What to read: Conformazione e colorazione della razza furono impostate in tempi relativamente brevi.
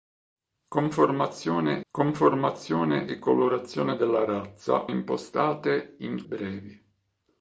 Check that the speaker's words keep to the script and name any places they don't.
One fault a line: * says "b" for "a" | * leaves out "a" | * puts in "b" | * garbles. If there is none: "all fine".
* puts in "conformazione"
* leaves out "furono"
* leaves out "tempi relativamente"